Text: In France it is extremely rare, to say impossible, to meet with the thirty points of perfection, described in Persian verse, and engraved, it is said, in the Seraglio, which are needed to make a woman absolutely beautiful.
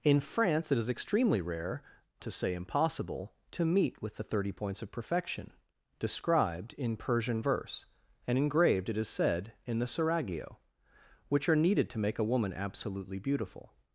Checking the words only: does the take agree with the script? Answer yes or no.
yes